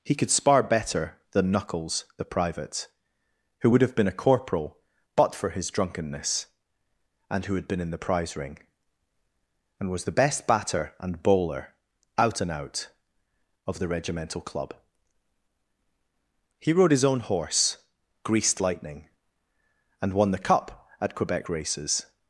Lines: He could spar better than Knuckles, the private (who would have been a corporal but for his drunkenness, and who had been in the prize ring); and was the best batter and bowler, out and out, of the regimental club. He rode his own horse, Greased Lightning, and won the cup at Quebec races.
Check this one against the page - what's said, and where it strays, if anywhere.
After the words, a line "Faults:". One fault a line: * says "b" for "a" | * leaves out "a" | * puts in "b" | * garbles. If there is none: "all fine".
He could spar better than Knuckles, the private (who would have been a corporal but for his drunkenness, and who had been in the prize ring); and was the best batter and bowler, out and out, of the regimental club. He rode his own horse, Greased Lightning, and won the cup at Quebec races.
Faults:
all fine